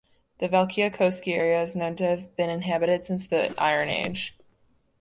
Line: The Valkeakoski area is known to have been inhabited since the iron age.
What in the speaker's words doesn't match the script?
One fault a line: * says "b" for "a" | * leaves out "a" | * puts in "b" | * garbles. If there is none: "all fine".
all fine